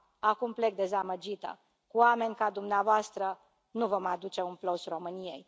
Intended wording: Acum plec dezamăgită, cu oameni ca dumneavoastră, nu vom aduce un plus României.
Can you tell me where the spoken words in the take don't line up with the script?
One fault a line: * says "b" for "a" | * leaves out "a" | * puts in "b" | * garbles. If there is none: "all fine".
all fine